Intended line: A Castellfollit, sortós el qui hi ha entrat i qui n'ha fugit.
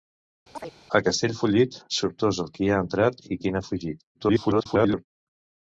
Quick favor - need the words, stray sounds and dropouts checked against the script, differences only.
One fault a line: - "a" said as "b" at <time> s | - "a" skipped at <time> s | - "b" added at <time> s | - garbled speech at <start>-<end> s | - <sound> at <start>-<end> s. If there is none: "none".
- chirp at 0.5-0.7 s
- garbled speech at 4.1-5.1 s